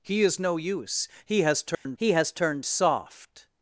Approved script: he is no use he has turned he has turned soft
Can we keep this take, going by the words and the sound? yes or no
no